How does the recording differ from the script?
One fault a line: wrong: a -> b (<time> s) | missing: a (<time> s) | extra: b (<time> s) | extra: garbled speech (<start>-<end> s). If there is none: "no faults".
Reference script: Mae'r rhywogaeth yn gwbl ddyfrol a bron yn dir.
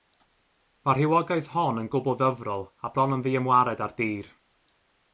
extra: hon (1.6 s)
extra: ddiymwared ar (3.3 s)